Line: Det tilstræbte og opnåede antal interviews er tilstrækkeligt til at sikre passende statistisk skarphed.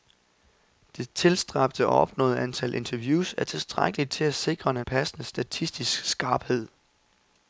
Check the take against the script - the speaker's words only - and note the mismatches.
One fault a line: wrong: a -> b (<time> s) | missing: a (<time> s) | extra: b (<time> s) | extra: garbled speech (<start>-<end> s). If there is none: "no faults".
no faults